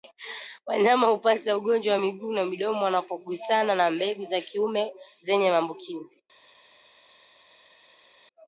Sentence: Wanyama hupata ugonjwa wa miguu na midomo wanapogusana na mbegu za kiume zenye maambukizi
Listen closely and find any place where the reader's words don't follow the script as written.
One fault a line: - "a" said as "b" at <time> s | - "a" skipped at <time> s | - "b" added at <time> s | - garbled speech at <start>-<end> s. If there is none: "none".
none